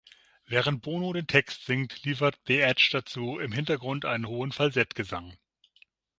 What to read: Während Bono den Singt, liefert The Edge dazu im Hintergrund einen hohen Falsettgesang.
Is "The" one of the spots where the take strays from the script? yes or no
no